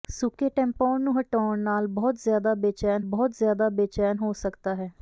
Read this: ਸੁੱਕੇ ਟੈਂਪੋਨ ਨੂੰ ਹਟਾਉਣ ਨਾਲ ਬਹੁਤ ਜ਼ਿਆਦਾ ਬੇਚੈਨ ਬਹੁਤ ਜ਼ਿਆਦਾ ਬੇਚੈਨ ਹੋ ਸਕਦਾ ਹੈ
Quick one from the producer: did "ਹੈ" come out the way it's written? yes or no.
yes